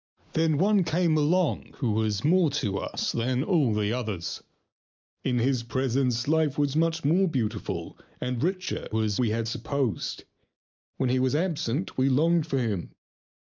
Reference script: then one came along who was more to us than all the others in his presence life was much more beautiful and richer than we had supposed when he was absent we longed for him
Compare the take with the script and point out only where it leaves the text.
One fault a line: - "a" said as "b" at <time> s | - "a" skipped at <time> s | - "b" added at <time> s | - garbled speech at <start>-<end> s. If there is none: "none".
- "than" said as "was" at 8.9 s